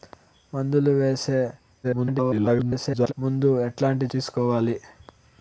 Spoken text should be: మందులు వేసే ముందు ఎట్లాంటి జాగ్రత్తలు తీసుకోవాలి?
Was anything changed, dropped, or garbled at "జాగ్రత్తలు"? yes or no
yes